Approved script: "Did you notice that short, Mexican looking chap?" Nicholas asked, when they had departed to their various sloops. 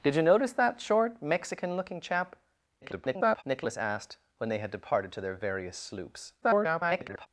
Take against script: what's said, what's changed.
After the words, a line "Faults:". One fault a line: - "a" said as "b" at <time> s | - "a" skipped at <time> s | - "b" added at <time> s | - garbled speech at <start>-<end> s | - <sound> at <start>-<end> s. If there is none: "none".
"Did you notice that short, Mexican looking chap?" [garbled] Nicholas asked, when they had departed to their various sloops. [garbled]
Faults:
- garbled speech at 2.8-3.4 s
- garbled speech at 6.4-7.3 s